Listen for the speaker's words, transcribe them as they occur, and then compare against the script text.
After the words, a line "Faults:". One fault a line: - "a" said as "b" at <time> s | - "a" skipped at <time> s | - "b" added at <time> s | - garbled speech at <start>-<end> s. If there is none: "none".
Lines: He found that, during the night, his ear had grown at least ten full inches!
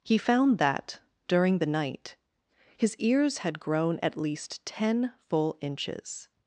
He found that, during the night, his ears had grown at least ten full inches!
Faults:
- "ear" said as "ears" at 3.0 s